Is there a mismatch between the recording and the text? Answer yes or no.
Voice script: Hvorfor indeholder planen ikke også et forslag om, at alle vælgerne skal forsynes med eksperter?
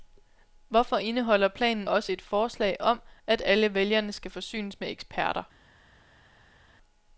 yes